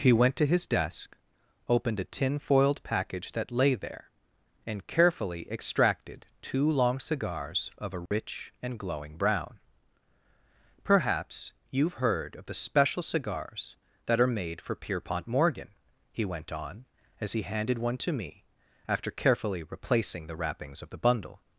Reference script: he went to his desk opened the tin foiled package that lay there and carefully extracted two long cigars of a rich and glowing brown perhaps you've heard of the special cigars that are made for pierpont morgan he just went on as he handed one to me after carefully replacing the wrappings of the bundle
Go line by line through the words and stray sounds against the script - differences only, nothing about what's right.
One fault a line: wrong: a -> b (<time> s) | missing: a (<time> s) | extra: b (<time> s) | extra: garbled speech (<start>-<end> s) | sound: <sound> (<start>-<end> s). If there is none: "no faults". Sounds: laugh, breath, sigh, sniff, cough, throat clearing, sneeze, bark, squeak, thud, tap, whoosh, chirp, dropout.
wrong: the -> a (2.0 s)
sound: dropout (8.1-8.1 s)
missing: just (16.2 s)